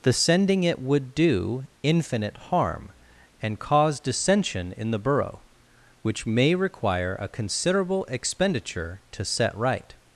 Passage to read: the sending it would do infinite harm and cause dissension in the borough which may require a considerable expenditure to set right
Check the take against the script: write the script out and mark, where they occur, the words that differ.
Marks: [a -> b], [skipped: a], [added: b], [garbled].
the sending it would do infinite harm and cause dissension in the borough which may require a considerable expenditure to set right